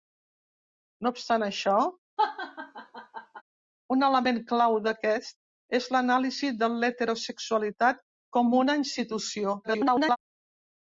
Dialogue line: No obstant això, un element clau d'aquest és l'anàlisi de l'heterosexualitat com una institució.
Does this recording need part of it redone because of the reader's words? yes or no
yes